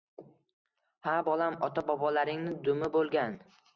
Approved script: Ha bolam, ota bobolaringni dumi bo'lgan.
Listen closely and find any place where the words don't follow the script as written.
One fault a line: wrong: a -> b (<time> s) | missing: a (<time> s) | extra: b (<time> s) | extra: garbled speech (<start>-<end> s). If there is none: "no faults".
no faults